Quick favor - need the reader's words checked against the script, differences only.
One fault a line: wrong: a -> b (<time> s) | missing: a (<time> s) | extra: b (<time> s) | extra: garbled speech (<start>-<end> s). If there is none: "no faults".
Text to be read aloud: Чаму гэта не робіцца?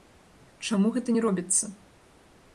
no faults